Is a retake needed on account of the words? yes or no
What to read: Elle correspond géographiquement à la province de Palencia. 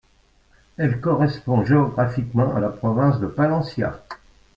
no